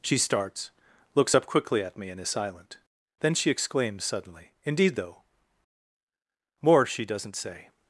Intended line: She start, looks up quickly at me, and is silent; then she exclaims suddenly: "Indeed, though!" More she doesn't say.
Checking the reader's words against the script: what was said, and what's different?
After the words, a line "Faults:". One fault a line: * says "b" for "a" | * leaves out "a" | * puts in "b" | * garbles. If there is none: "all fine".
She starts, looks up quickly at me, and is silent; then she exclaims suddenly: "Indeed, though!" More she doesn't say.
Faults:
* says "starts" for "start"